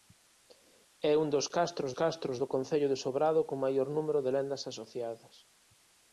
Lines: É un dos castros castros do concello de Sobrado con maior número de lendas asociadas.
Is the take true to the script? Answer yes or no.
yes